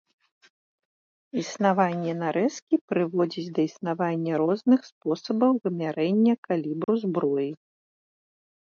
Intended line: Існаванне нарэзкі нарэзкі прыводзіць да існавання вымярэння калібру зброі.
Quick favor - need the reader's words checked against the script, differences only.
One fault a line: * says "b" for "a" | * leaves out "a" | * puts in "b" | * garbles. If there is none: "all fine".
* leaves out "нарэзкі"
* puts in "розных спосабаў"